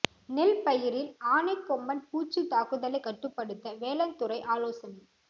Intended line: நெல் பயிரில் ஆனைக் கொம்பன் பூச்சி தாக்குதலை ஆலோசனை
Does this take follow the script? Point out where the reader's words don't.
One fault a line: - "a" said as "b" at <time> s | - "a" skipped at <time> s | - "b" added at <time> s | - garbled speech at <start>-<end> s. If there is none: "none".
- "கட்டுப்படுத்த வேளாண் துறை" added at 3.0 s